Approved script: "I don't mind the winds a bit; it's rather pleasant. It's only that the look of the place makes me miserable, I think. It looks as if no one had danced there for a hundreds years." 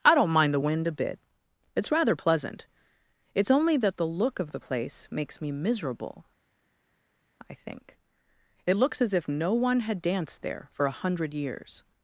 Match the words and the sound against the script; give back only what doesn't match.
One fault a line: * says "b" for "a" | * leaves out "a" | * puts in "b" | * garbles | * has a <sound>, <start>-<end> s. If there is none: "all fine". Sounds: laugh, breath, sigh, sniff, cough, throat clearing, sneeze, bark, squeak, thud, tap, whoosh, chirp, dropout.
* says "wind" for "winds"
* says "hundred" for "hundreds"